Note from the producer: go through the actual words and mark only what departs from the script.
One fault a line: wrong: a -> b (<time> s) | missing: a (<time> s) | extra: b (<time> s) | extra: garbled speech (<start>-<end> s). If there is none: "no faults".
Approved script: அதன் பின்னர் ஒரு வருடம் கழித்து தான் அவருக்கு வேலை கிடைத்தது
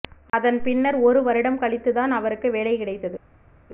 no faults